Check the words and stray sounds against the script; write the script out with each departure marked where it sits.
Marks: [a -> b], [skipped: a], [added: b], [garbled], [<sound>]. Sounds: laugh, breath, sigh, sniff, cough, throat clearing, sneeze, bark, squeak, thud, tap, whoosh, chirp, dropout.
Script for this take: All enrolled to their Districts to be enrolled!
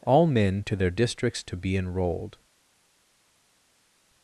All [enrolled -> men] to their Districts to be enrolled!